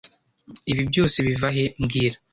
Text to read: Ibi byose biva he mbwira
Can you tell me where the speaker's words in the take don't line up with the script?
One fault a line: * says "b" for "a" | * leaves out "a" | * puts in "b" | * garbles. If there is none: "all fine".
all fine